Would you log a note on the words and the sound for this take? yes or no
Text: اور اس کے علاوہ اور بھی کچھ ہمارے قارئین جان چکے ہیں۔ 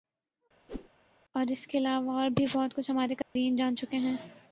yes